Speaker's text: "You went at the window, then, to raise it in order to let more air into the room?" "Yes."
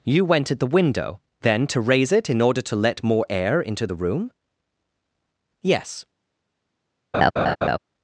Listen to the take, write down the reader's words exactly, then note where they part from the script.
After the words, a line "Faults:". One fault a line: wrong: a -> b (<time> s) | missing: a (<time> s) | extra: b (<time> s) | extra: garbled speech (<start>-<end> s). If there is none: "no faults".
"You went at the window, then, to raise it in order to let more air into the room?" "Yes."
Faults:
no faults